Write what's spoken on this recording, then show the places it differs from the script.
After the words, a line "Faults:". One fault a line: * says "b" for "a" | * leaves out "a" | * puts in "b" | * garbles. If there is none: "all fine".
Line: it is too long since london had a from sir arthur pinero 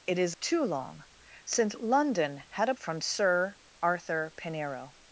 it is too long since london had a from sir arthur pinero
Faults:
all fine